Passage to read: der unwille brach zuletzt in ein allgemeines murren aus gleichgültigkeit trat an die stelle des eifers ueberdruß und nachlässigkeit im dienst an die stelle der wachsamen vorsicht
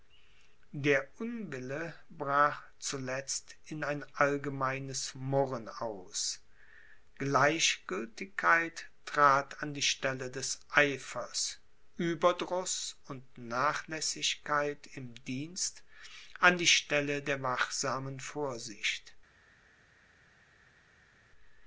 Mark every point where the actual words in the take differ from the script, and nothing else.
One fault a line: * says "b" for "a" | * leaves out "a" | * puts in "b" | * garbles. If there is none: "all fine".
all fine